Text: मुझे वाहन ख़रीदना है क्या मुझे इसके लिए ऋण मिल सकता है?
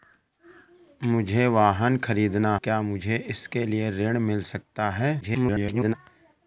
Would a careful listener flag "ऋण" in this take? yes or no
no